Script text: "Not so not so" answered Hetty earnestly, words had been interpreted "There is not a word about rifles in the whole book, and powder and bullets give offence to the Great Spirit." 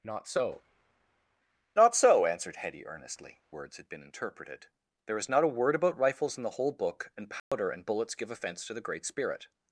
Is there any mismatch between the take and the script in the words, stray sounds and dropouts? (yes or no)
yes